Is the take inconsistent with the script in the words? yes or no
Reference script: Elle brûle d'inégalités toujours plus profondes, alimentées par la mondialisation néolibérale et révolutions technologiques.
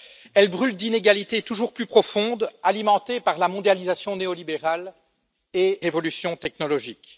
no